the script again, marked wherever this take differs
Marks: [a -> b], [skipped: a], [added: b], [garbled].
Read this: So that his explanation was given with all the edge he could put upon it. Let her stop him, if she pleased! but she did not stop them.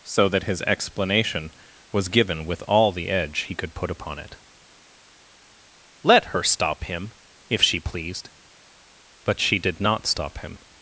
So that his explanation was given with all the edge he could put upon it. Let her stop him, if she pleased! but she did not stop [them. -> him]